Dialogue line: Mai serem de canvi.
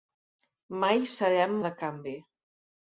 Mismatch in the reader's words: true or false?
false